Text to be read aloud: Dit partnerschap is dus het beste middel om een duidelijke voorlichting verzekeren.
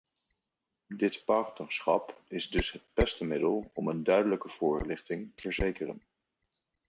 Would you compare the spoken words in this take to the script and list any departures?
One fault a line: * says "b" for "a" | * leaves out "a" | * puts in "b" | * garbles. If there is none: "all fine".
all fine